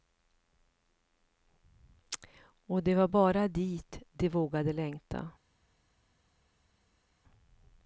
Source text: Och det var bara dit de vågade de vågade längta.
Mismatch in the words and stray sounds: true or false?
true